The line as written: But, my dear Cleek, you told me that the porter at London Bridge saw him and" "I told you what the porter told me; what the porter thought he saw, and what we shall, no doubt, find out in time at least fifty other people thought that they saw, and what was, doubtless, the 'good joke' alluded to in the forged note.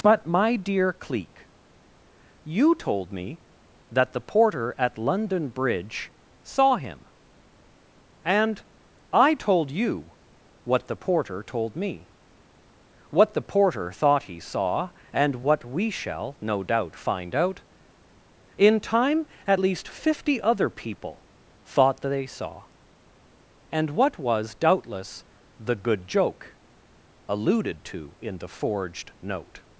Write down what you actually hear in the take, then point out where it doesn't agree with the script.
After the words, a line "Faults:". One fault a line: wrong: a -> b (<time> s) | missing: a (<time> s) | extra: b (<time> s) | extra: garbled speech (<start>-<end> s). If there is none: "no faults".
But, my dear Cleek, you told me that the porter at London Bridge saw him and" "I told you what the porter told me; what the porter thought he saw, and what we shall, no doubt, find out in time at least fifty other people thought that they saw, and what was, doubtless, the 'good joke' alluded to in the forged note.
Faults:
no faults